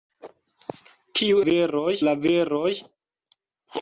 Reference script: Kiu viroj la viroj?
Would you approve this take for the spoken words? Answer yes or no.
yes